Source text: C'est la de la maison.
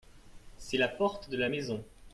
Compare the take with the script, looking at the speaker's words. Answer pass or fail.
fail